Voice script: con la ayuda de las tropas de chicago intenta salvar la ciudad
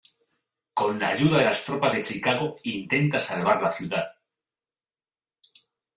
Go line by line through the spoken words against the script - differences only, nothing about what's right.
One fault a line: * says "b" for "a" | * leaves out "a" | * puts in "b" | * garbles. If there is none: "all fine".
all fine